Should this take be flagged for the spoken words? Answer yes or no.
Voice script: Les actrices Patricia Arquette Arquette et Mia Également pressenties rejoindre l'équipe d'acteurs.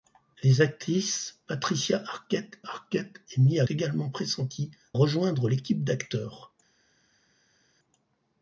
no